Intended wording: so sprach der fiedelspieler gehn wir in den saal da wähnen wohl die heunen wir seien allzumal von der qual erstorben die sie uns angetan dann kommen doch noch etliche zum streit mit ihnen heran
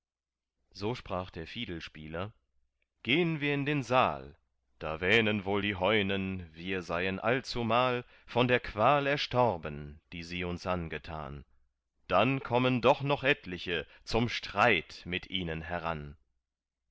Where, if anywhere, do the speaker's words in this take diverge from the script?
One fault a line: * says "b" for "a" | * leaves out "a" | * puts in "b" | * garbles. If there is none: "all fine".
all fine